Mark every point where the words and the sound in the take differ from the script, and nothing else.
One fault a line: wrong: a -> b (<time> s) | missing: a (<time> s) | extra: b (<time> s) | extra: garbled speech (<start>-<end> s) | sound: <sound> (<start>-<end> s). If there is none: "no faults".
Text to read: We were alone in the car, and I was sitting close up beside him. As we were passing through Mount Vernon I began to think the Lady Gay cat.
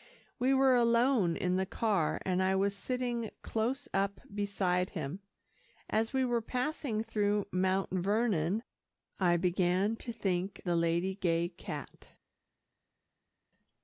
no faults